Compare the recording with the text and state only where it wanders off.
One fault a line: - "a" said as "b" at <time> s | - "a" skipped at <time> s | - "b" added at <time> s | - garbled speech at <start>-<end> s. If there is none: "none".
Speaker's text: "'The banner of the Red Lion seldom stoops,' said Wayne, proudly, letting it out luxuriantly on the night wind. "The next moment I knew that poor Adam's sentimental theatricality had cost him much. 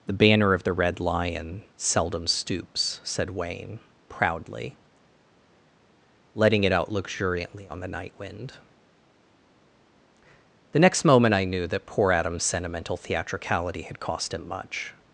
none